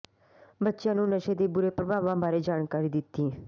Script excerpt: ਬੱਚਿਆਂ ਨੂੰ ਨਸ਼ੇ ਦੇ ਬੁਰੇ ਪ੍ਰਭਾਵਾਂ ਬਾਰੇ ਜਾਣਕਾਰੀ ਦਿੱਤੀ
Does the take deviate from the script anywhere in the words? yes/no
no